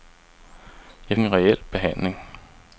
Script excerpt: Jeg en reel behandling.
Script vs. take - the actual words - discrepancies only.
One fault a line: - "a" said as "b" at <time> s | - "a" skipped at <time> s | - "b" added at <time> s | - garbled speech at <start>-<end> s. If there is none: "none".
none